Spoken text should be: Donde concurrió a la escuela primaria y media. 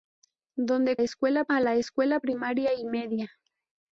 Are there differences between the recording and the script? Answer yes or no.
yes